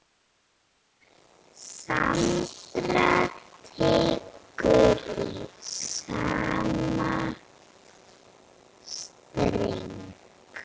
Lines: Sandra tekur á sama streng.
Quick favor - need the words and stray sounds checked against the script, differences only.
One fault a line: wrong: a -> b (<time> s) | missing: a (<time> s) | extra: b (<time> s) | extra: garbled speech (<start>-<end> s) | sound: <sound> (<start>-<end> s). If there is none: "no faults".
wrong: á -> í (5.2 s)